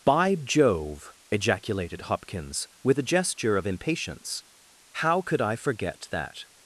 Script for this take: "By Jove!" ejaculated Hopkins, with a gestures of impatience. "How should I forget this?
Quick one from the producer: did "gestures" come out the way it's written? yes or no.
no